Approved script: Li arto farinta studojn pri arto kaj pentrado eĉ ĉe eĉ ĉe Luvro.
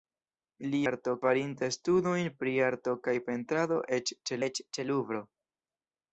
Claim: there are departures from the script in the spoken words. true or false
false